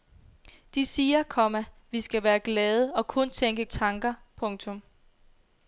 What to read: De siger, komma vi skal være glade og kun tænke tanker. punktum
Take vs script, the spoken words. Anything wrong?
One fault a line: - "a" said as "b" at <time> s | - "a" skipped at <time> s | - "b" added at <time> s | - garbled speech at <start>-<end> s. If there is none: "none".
none